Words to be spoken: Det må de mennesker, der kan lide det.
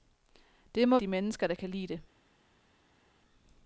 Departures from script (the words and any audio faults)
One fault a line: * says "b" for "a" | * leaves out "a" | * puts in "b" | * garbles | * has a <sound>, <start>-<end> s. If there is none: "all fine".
all fine